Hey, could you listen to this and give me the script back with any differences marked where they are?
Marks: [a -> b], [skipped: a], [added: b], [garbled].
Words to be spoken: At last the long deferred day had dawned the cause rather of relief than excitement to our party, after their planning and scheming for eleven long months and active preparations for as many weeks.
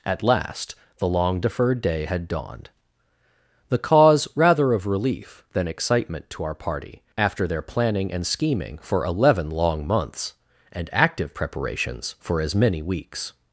At last the long deferred day had dawned the cause rather of relief than excitement to our party, after their planning and scheming for eleven long months and active preparations for as many weeks.